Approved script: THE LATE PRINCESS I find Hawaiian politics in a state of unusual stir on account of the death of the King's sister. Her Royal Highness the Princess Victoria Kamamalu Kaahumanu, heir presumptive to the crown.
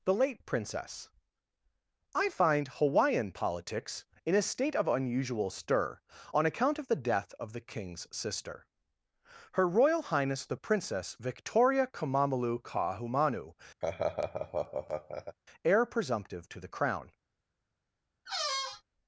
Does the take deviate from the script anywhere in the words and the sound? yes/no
yes